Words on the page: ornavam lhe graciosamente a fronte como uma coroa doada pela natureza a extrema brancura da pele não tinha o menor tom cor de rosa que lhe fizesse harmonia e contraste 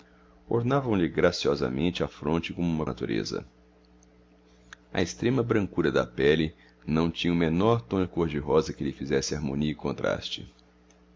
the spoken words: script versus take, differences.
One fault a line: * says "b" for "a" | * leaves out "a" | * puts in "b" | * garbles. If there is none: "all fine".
* leaves out "coroa doada pela"